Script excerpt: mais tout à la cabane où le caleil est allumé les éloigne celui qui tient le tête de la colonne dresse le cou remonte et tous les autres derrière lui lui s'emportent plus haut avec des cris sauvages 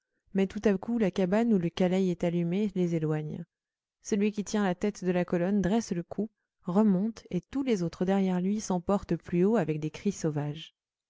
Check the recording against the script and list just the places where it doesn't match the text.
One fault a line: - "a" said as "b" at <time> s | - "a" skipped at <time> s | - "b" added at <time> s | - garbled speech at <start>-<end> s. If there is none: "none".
- "coup" added at 0.8 s
- "le" said as "la" at 4.6 s
- "lui" skipped at 8.6 s